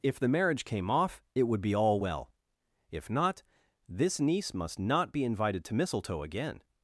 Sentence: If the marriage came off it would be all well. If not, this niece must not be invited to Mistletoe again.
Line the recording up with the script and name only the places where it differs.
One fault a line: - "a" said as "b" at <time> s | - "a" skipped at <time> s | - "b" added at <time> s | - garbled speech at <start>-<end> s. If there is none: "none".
none